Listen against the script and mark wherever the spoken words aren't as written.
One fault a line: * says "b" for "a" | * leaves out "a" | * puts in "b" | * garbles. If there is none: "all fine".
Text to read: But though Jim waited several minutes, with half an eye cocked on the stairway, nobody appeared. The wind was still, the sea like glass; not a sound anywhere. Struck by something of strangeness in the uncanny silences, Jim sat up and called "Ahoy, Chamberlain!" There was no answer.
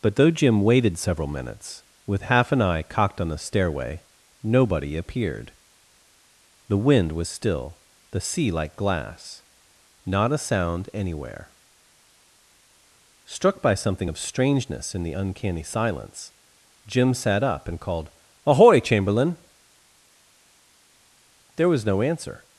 * says "silence" for "silences"